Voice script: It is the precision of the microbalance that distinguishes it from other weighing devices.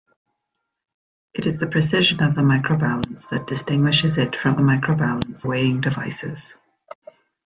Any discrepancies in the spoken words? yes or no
yes